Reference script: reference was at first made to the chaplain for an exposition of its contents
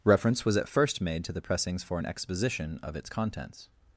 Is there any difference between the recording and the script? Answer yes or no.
yes